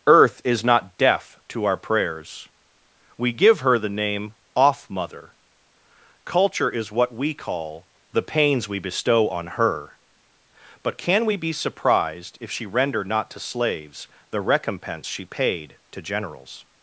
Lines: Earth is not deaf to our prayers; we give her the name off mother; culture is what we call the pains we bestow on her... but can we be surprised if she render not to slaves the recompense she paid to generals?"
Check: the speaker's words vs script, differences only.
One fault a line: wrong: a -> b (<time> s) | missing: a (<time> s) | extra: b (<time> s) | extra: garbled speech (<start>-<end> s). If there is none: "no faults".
no faults